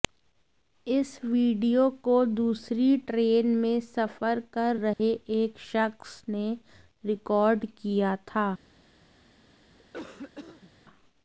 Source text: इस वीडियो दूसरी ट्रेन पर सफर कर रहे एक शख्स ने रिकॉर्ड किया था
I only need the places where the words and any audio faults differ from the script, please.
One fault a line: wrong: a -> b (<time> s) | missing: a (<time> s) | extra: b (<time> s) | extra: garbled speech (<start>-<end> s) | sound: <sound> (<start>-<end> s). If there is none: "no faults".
extra: को (2.0 s)
wrong: पर -> में (3.6 s)
sound: dropout (4.9-5.0 s)
sound: cough (9.8-10.7 s)